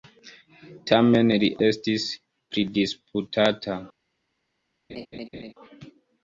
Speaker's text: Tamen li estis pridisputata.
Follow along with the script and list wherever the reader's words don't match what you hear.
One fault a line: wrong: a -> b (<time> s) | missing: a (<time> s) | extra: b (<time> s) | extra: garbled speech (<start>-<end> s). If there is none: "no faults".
no faults